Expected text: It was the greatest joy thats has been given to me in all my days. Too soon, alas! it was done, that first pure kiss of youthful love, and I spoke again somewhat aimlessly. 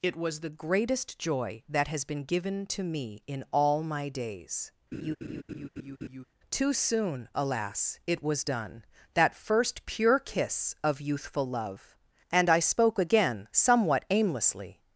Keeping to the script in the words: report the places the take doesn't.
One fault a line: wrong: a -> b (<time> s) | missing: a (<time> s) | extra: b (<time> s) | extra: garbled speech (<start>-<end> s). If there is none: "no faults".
wrong: thats -> that (1.7 s)